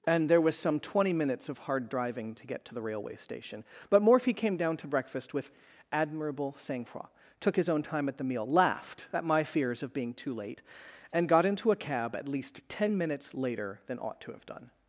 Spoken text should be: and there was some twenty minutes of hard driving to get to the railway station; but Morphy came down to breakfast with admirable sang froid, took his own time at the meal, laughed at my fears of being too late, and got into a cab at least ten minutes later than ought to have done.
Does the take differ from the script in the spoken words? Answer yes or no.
no